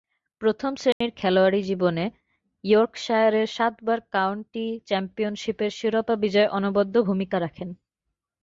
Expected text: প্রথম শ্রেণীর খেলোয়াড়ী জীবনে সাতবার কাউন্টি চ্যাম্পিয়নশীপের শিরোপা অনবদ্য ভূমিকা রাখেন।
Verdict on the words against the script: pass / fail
fail